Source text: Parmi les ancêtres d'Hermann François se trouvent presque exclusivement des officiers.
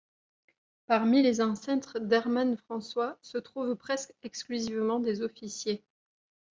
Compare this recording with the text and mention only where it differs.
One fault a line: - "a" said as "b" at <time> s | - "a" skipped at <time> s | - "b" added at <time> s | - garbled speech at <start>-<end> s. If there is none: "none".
none